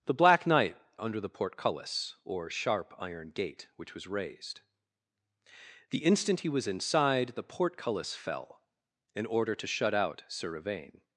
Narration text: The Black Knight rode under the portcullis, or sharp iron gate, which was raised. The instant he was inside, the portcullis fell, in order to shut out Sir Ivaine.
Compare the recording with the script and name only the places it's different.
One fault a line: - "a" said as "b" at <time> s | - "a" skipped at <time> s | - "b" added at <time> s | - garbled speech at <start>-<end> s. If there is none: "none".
- "rode" skipped at 0.8 s